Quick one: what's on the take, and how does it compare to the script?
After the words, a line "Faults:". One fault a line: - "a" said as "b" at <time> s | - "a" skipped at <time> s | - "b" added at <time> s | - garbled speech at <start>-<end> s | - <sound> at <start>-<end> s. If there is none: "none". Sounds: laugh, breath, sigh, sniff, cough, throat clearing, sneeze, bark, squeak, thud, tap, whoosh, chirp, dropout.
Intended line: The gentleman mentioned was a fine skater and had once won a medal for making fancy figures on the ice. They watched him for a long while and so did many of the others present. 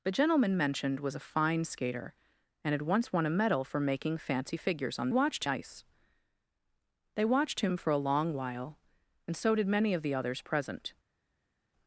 The gentleman mentioned was a fine skater and had once won a medal for making fancy figures on watched ice. They watched him for a long while and so did many of the others present.
Faults:
- "the" said as "watched" at 5.1 s